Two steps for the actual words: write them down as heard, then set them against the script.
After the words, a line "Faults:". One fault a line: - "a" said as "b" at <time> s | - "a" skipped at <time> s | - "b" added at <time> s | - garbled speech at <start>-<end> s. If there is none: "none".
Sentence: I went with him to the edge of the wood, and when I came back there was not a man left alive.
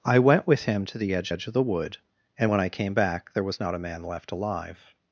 I went with him to the edge edge of the wood, and when I came back there was not a man left alive.
Faults:
- "edge" added at 1.3 s